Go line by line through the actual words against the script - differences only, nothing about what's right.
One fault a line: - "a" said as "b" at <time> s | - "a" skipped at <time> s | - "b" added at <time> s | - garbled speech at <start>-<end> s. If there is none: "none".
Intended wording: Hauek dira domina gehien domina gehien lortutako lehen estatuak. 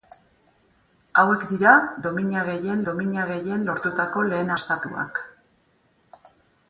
none